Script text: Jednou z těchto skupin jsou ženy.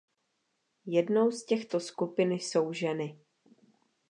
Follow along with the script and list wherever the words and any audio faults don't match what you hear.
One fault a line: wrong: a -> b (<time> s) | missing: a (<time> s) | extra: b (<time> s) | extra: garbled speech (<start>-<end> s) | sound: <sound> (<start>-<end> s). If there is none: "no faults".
no faults